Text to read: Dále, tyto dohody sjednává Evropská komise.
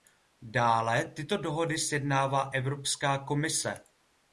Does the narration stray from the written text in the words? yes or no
no